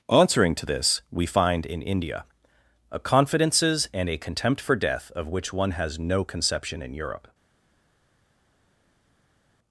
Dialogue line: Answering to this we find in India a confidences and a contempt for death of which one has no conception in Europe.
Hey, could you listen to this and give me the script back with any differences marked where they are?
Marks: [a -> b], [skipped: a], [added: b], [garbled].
Answering to this we find in India a confidences and a contempt for death of which one has no conception in Europe.